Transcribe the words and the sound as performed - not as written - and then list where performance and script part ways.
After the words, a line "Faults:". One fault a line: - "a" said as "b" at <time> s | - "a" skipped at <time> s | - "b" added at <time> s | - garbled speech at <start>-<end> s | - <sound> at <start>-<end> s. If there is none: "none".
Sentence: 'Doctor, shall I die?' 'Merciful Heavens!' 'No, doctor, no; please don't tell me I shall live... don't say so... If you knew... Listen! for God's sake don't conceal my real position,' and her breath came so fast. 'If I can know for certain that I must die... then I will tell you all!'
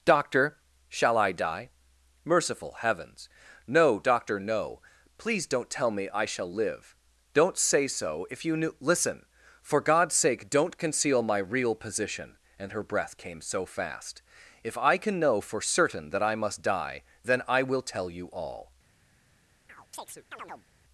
'Doctor, shall I die?' 'Merciful Heavens!' 'No, doctor, no; please don't tell me I shall live... don't say so... If you knew... Listen! for God's sake don't conceal my real position,' and her breath came so fast. 'If I can know for certain that I must die... then I will tell you all!'
Faults:
- chirp at 19.7-20.7 s